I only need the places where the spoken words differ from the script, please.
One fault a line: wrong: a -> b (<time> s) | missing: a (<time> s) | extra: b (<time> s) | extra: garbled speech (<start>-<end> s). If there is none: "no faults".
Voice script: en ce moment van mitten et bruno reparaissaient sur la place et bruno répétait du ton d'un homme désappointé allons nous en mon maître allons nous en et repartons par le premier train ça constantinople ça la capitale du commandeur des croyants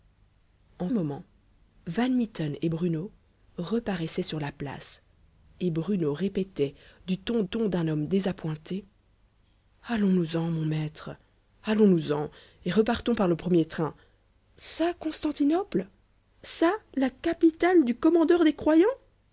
missing: ce (0.9 s)
extra: ton (7.4 s)